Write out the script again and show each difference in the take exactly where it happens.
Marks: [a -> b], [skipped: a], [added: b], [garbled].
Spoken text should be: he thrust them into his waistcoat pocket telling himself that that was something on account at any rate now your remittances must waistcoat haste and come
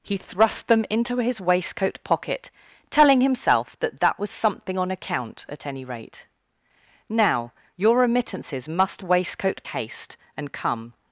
he thrust them into his waistcoat pocket telling himself that that was something on account at any rate now your remittances must waistcoat haste and come